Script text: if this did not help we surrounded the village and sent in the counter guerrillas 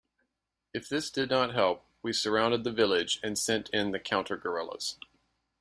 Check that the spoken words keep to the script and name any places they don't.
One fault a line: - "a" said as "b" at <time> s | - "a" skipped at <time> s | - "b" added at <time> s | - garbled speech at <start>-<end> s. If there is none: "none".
none